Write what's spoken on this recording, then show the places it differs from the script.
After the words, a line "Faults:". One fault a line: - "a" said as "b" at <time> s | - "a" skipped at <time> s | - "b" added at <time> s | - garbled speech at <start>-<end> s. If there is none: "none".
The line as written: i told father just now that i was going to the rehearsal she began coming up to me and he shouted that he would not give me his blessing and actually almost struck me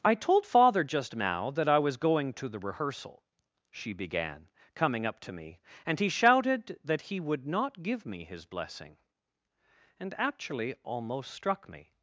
i told father just now that i was going to the rehearsal she began coming up to me and he shouted that he would not give me his blessing and actually almost struck me
Faults:
none